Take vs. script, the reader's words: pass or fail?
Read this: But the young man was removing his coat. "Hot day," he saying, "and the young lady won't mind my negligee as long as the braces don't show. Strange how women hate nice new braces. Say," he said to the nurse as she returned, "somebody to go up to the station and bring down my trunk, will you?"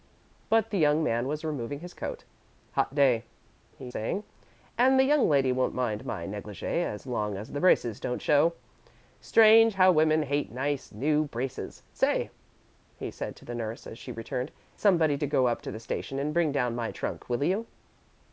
pass